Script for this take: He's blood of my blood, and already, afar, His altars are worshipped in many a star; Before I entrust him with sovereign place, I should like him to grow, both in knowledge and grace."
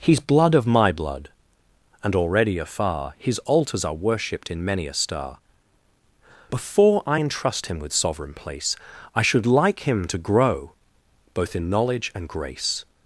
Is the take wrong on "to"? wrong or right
right